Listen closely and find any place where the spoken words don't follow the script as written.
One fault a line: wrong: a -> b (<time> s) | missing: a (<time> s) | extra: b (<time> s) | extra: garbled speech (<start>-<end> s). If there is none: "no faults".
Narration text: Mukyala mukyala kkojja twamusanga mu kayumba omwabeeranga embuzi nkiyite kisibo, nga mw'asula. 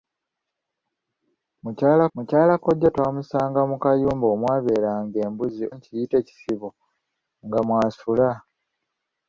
no faults